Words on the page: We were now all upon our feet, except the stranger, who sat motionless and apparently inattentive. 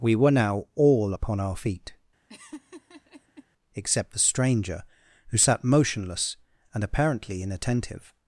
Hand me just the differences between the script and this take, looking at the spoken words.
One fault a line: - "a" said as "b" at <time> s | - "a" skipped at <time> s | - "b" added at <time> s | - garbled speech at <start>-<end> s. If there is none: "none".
none